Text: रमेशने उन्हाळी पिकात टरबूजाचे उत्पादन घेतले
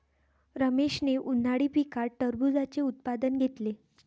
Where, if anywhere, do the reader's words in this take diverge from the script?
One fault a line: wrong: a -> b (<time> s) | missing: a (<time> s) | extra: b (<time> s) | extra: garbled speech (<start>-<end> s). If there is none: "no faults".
no faults